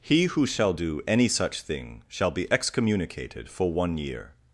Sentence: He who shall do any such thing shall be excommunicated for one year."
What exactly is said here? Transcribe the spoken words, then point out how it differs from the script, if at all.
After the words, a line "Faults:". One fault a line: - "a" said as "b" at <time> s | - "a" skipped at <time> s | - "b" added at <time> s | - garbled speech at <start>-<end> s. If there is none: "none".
He who shall do any such thing shall be excommunicated for one year."
Faults:
none